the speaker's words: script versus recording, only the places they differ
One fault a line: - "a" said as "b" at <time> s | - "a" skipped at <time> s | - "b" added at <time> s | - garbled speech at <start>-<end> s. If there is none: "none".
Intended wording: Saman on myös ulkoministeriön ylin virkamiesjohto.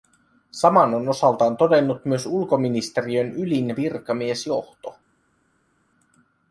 - "osaltaan todennut" added at 1.1 s